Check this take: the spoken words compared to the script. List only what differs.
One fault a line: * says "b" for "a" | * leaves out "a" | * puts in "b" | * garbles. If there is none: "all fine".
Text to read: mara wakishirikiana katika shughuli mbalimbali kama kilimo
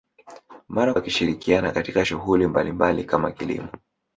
all fine